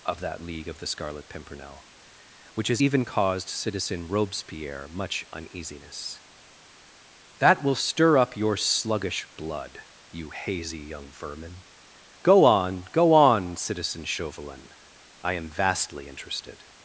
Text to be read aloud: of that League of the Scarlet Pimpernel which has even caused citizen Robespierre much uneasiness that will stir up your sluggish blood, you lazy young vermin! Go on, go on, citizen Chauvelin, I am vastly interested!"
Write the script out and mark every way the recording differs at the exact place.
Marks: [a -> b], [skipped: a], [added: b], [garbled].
of that League of the Scarlet Pimpernel which has even caused citizen Robespierre much uneasiness that will stir up your sluggish blood, you [lazy -> hazy] young vermin! Go on, go on, citizen Chauvelin, I am vastly interested!"